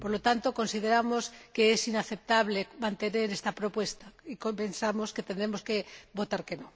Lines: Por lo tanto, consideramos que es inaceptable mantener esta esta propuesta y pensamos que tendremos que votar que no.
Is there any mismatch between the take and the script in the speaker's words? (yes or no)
yes